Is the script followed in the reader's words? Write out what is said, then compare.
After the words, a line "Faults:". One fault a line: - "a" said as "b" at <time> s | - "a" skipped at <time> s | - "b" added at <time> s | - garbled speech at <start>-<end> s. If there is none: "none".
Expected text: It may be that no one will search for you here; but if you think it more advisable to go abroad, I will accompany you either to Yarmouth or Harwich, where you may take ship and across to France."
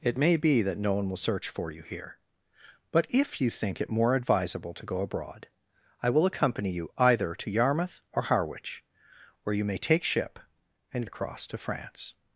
It may be that no one will search for you here; but if you think it more advisable to go abroad, I will accompany you either to Yarmouth or Harwich, where you may take ship and across to France."
Faults:
none